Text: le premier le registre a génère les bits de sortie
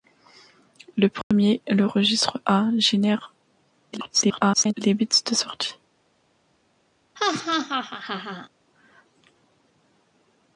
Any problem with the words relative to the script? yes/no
yes